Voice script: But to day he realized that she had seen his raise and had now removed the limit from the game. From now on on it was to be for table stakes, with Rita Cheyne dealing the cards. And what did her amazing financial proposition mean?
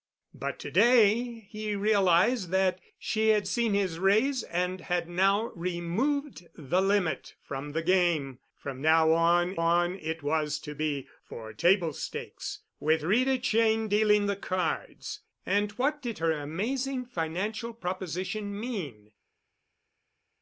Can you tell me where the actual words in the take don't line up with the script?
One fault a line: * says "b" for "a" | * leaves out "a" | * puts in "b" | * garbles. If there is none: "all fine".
all fine